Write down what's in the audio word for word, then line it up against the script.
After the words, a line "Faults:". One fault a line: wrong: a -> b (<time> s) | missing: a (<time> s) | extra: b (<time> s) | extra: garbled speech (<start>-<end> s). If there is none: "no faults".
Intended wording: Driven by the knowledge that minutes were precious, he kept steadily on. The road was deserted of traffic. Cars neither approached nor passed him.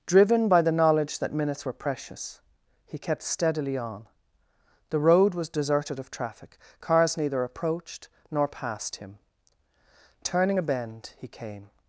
Driven by the knowledge that minutes were precious, he kept steadily on. The road was deserted of traffic. Cars neither approached nor passed him. Turning a bend he came
Faults:
extra: Turning a bend he came (10.2 s)